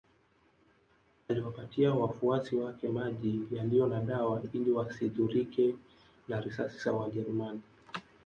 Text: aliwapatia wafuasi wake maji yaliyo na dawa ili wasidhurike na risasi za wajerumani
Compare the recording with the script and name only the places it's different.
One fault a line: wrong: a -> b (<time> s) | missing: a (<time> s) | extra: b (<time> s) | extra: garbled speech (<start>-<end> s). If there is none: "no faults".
no faults